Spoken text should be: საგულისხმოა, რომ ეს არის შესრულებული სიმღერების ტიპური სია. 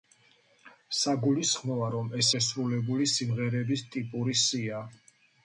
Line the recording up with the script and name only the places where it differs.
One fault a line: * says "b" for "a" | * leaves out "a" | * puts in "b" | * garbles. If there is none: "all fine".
* leaves out "არის"